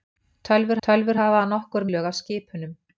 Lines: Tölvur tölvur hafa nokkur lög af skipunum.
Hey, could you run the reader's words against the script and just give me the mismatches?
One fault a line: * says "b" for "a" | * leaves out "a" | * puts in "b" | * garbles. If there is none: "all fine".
all fine